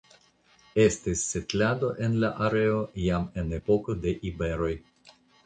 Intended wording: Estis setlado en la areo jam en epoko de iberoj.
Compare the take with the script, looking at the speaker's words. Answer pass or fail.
pass